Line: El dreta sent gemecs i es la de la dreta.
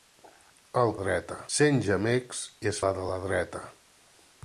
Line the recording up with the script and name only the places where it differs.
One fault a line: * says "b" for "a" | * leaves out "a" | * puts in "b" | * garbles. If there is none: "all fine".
all fine